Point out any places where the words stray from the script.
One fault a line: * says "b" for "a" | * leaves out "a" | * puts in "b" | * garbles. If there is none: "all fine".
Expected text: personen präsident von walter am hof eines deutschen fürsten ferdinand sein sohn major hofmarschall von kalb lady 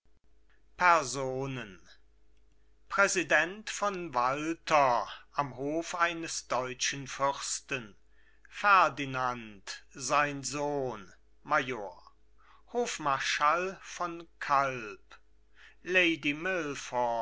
all fine